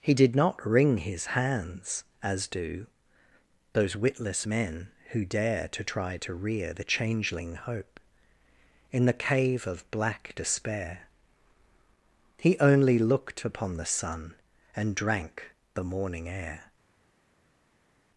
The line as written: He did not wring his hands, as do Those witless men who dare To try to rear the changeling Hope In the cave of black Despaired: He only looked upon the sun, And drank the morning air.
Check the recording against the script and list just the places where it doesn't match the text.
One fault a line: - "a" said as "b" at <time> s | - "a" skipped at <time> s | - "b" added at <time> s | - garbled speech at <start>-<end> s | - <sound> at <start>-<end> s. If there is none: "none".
- "Despaired" said as "Despair" at 10.4 s